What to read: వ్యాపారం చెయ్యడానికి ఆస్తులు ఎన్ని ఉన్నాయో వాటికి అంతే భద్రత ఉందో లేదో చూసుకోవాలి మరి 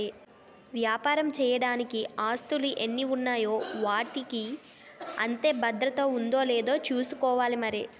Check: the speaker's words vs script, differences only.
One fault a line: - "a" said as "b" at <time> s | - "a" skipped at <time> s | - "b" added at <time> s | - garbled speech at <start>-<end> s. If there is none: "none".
none